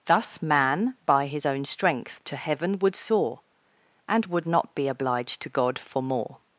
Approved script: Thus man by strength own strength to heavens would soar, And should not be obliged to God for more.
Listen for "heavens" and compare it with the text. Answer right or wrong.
wrong